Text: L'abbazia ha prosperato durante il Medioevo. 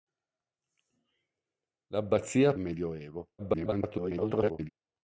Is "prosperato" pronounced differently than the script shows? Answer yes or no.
yes